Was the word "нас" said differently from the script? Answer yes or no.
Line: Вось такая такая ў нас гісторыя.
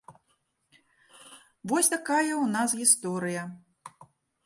no